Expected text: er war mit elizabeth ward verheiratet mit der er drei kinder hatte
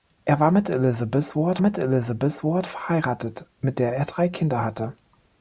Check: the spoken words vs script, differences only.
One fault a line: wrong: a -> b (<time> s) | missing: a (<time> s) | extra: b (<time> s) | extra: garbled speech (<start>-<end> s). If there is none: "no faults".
extra: mit elizabeth ward (1.6 s)